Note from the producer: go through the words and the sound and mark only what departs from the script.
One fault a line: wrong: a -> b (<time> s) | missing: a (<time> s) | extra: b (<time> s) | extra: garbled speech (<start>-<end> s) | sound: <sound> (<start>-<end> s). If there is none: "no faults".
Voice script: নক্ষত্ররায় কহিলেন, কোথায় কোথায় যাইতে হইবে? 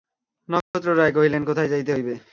sound: dropout (0.6-0.7 s)
missing: কোথায় (1.7 s)